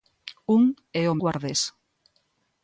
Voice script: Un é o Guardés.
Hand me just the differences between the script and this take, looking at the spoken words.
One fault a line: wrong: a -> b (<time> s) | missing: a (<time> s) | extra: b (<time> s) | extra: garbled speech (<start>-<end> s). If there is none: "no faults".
no faults